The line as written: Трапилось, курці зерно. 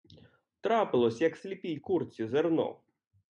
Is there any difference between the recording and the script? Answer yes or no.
yes